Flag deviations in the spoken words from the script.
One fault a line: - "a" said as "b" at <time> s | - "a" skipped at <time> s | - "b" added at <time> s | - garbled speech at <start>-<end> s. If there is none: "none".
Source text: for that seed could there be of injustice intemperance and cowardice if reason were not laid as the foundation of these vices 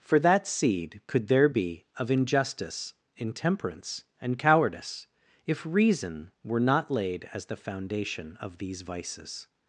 none